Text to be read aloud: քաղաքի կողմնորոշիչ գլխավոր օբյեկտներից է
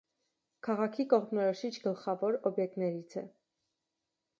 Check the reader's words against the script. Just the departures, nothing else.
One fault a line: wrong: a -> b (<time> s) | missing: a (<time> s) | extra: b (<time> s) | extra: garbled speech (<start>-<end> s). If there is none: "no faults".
no faults